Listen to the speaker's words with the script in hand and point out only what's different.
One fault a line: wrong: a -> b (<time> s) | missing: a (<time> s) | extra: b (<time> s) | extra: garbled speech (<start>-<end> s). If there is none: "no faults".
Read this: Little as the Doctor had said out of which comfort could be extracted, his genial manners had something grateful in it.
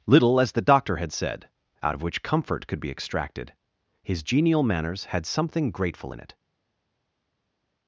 no faults